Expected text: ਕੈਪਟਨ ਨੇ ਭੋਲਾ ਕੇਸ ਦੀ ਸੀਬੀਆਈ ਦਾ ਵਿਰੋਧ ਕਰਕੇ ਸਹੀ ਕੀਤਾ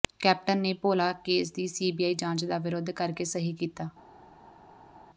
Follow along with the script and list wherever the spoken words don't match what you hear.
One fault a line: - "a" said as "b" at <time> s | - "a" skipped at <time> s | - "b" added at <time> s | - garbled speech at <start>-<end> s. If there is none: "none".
- "ਜਾਂਚ" added at 2.1 s